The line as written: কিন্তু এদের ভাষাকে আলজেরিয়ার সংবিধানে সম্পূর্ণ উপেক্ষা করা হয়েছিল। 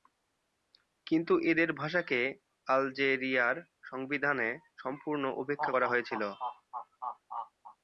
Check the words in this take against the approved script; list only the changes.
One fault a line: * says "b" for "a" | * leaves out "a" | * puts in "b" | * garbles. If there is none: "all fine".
all fine